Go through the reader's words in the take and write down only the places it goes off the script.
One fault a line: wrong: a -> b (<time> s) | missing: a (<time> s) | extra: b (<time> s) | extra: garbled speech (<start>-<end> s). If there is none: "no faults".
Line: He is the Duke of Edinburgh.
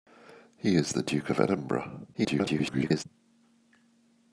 extra: garbled speech (2.1-3.0 s)